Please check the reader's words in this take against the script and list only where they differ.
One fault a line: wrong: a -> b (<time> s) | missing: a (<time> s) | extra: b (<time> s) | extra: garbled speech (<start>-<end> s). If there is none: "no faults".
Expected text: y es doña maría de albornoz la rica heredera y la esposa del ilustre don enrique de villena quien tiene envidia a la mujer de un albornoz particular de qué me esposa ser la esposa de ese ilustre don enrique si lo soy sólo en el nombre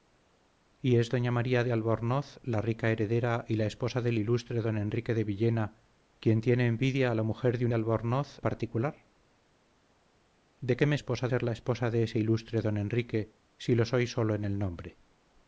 no faults